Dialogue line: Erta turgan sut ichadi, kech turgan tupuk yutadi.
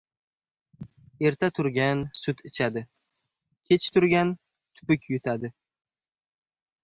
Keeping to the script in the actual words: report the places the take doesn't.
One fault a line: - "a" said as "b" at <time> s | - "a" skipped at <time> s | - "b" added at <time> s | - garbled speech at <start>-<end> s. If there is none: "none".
none